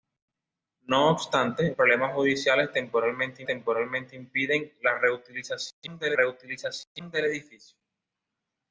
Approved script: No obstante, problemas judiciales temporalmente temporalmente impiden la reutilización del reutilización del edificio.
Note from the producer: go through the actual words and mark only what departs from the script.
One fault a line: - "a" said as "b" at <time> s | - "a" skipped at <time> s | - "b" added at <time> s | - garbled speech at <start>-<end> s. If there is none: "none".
none